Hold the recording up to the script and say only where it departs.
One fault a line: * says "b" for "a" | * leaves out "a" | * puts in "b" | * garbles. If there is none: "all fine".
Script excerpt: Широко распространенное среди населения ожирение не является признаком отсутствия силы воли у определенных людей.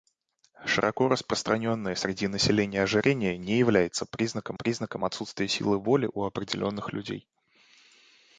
* puts in "признаком"